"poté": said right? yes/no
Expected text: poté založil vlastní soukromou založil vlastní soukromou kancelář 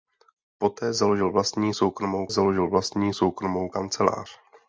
yes